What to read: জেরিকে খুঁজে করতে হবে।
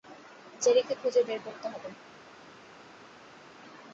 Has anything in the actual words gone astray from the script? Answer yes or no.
yes